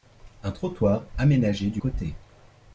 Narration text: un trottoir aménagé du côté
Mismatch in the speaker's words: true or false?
false